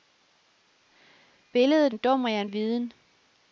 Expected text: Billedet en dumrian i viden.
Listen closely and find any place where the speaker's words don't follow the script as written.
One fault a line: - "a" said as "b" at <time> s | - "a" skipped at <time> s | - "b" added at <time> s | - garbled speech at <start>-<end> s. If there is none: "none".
none